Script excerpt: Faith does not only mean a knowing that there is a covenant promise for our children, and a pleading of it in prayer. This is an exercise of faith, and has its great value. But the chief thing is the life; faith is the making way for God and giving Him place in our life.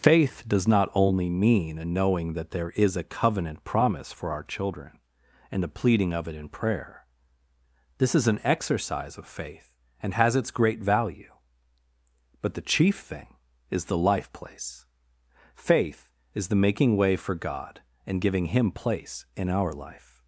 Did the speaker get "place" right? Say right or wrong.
right